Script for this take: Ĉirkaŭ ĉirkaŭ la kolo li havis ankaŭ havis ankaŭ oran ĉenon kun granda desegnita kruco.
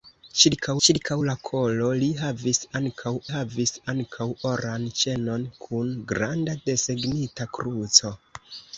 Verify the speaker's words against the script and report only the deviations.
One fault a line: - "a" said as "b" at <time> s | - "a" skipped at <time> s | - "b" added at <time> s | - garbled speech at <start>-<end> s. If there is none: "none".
none